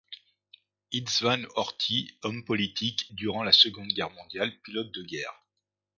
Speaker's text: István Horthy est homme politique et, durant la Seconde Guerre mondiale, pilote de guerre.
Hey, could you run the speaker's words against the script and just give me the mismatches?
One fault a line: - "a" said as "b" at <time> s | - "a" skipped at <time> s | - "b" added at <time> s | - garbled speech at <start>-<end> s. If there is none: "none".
- "est" skipped at 2.2 s
- "et" skipped at 3.1 s